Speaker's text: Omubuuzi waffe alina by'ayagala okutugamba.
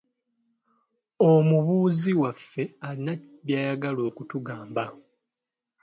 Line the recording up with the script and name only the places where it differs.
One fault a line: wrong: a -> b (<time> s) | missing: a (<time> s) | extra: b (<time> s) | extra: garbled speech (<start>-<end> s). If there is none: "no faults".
no faults